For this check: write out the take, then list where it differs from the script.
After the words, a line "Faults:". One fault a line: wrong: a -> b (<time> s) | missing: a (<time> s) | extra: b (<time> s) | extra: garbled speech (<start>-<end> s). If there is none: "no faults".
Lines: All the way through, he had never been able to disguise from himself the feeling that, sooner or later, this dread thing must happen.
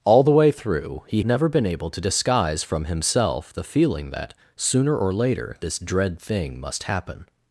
All the way through, he never been able to disguise from himself the feeling that, sooner or later, this dread thing must happen.
Faults:
missing: had (1.2 s)